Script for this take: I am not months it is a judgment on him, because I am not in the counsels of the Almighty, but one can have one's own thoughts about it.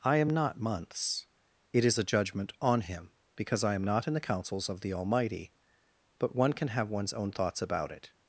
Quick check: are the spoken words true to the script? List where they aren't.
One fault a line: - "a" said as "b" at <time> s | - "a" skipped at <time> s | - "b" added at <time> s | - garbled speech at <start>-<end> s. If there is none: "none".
none